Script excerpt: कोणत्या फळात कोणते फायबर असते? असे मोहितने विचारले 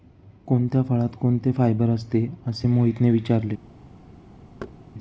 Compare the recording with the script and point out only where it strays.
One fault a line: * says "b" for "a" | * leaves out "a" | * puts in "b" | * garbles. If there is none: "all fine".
all fine